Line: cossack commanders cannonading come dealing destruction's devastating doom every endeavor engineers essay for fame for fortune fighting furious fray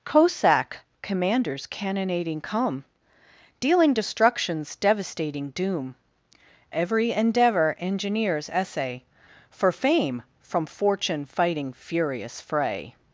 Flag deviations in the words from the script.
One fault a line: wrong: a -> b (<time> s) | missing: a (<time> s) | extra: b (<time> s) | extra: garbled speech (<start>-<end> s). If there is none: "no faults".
wrong: for -> from (10.4 s)